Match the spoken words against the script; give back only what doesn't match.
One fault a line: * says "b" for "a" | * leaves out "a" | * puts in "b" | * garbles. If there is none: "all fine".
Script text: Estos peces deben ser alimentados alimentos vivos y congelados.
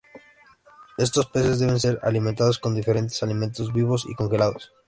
* puts in "con diferentes"